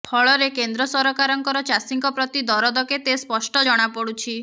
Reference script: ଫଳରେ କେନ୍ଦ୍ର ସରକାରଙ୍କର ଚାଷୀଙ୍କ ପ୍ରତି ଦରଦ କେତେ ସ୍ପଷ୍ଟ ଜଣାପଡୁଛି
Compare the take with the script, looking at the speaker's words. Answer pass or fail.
pass